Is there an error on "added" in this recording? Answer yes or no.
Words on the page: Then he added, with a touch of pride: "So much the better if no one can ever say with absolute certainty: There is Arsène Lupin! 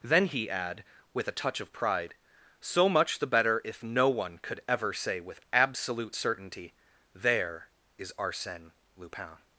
yes